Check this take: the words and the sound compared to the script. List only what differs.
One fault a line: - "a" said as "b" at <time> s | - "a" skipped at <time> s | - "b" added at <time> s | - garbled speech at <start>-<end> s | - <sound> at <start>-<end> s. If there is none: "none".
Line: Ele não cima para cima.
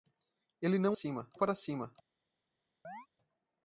- chirp at 2.8-3.1 s